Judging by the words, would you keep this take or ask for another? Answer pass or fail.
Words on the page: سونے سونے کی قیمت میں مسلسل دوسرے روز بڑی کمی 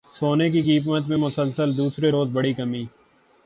fail